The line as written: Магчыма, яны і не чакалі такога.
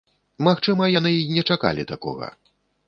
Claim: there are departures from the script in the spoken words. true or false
false